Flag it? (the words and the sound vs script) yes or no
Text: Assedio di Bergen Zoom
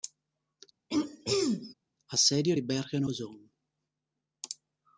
yes